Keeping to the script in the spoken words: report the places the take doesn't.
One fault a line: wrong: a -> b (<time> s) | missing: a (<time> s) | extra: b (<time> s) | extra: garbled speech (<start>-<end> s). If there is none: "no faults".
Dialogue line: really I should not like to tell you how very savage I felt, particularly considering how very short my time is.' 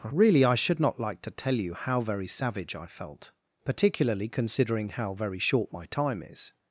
no faults